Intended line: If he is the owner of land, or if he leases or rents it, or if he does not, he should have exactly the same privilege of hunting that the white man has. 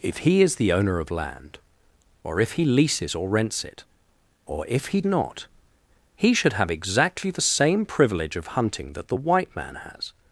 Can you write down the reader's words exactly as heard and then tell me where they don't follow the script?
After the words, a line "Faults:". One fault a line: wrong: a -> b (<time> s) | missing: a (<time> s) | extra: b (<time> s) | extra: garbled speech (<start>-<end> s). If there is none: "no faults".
If he is the owner of land, or if he leases or rents it, or if he not, he should have exactly the same privilege of hunting that the white man has.
Faults:
missing: does (5.0 s)